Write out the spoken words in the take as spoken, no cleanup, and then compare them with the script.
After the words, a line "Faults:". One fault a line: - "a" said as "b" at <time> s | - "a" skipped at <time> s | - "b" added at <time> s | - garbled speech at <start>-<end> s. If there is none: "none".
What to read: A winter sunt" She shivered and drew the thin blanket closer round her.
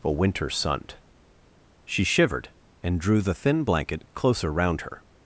A winter sunt" She shivered and drew the thin blanket closer round her.
Faults:
none